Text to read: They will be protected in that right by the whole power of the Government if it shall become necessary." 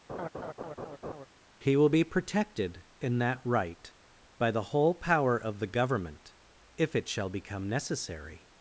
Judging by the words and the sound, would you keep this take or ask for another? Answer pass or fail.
fail